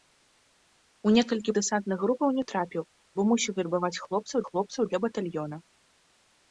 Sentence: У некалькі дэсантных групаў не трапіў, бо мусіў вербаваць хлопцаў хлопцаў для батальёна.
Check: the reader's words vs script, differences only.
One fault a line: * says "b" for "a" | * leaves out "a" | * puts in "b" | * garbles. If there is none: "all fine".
all fine